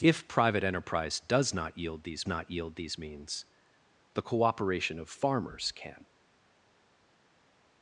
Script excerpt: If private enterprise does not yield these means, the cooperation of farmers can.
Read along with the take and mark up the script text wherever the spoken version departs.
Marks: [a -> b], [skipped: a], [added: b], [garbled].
If private enterprise does not yield these [added: not yield these] means, the cooperation of farmers can.